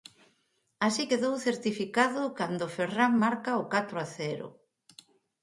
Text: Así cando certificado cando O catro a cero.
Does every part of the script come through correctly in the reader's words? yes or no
no